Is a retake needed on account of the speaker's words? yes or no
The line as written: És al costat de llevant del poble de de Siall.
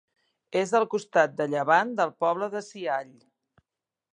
yes